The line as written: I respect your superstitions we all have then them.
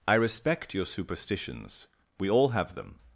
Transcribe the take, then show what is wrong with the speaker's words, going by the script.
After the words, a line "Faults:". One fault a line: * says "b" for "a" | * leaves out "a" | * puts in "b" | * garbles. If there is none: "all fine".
I respect your superstitions we all have them.
Faults:
* leaves out "then"